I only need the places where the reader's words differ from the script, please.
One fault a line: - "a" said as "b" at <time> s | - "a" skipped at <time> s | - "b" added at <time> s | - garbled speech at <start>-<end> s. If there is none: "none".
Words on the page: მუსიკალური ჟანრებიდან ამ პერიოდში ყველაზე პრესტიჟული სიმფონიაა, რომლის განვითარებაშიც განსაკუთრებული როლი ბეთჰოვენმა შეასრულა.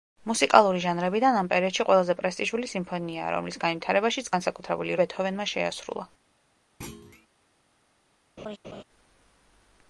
- "როლი" skipped at 5.0 s